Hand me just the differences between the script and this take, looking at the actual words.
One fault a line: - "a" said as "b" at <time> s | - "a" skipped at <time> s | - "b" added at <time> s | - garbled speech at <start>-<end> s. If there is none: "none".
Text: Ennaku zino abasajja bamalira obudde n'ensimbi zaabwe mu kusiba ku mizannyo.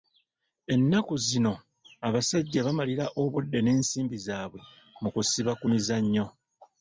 none